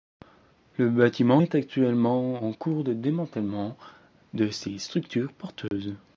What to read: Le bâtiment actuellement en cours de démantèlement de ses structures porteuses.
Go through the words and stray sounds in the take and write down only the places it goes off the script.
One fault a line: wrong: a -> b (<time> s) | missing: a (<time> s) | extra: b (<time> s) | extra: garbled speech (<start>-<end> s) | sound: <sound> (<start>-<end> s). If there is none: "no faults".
extra: est (1.4 s)
sound: dropout (5.7-5.7 s)